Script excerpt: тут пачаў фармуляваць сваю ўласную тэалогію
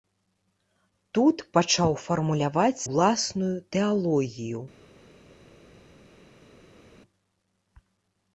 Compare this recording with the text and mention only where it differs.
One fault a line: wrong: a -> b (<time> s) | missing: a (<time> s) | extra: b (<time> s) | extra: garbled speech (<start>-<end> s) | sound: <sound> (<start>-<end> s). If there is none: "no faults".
missing: сваю (2.9 s)